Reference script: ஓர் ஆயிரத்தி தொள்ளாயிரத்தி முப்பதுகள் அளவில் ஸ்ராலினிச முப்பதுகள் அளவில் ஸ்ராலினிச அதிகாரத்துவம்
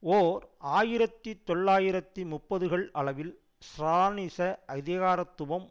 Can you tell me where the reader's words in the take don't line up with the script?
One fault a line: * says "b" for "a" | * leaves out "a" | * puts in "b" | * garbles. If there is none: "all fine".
* leaves out "முப்பதுகள் அளவில் ஸ்ராலினிச"